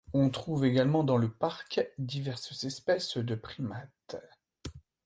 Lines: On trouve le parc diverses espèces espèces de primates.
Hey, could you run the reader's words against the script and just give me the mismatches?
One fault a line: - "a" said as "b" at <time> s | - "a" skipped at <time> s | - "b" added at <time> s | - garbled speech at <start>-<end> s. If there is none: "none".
- "également dans" added at 0.7 s
- "espèces" skipped at 3.2 s